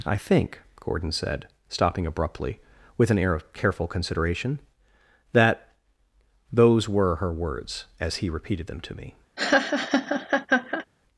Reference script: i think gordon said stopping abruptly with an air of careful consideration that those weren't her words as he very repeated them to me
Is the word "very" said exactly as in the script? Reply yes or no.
no